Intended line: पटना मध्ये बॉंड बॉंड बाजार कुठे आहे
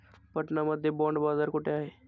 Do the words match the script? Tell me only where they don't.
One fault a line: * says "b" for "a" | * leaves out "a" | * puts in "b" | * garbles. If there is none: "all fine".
* leaves out "बॉंड"